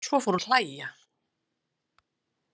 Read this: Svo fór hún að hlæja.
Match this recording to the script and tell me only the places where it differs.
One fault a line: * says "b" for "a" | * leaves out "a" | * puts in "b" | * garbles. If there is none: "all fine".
* leaves out "hún"